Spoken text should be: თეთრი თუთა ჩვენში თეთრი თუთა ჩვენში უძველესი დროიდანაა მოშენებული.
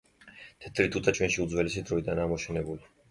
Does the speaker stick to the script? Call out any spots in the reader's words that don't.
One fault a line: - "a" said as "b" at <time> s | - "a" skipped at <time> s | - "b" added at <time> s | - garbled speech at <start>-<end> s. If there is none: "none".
- "თეთრი თუთა ჩვენში" skipped at 1.4 s